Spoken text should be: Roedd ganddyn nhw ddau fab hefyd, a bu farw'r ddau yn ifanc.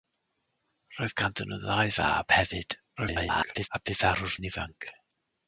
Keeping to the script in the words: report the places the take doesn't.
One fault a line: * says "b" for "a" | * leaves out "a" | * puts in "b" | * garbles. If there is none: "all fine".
* garbles
* leaves out "ddau"